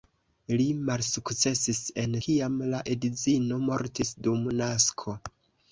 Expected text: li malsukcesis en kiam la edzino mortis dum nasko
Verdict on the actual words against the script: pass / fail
pass